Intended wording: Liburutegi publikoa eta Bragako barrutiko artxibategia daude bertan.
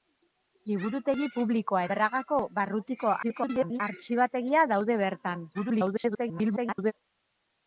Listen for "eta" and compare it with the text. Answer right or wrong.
wrong